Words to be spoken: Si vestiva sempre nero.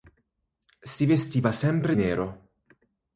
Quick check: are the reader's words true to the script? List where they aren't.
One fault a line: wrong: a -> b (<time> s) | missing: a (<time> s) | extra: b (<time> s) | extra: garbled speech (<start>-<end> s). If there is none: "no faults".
no faults